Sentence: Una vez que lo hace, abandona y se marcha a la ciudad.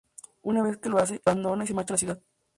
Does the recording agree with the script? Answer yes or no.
yes